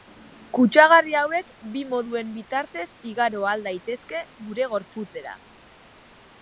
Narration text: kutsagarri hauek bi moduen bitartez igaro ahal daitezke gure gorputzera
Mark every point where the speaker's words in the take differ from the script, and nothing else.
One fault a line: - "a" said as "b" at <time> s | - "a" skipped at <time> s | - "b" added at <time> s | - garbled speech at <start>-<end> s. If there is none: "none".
none